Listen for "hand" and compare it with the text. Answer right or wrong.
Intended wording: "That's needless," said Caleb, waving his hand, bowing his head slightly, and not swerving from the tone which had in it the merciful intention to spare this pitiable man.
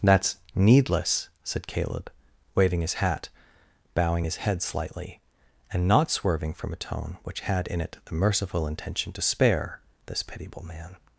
wrong